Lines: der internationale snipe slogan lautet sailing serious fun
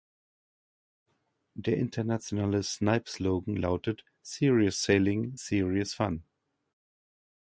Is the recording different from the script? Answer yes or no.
yes